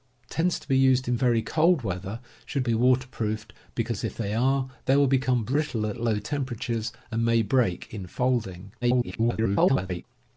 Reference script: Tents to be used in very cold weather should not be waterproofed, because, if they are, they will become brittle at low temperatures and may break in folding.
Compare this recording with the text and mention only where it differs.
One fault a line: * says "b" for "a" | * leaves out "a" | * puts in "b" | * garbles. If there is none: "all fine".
* leaves out "not"
* garbles